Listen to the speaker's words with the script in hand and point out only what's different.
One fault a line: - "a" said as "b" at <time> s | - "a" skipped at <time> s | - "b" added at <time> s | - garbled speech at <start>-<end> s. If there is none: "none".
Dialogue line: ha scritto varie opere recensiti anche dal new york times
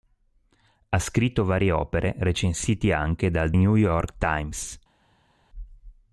none